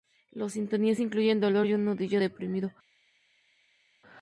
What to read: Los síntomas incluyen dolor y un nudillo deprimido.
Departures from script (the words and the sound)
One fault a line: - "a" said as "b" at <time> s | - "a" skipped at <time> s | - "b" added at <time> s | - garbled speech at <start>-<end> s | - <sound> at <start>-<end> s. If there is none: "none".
none